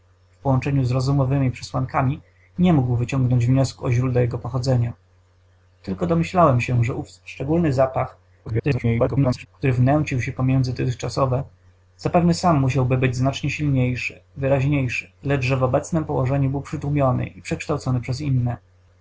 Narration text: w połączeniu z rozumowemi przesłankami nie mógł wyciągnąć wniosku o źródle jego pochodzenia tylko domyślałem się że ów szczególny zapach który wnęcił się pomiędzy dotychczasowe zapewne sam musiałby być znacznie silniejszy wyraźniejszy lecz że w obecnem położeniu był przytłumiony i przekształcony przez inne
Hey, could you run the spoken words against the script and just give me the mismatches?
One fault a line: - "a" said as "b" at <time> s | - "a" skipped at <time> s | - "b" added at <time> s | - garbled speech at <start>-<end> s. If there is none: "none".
- garbled speech at 8.5-9.5 s